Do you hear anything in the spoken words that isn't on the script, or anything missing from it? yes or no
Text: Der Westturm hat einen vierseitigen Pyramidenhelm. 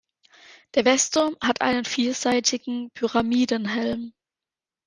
no